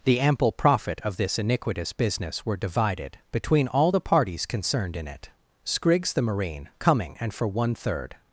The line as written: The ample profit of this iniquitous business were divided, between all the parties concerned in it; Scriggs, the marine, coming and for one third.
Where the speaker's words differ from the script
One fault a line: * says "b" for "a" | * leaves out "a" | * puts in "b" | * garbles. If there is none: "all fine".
all fine